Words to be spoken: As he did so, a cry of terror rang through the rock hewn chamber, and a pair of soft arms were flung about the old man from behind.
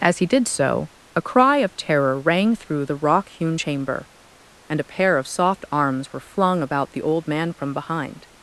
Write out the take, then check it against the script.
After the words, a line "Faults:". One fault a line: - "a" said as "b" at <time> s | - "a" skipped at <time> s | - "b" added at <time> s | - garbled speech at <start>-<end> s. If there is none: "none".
As he did so, a cry of terror rang through the rock hewn chamber, and a pair of soft arms were flung about the old man from behind.
Faults:
none